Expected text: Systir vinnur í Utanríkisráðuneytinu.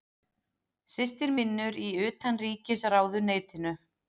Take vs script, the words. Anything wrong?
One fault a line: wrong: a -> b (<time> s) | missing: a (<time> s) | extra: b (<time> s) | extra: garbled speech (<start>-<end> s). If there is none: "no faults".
no faults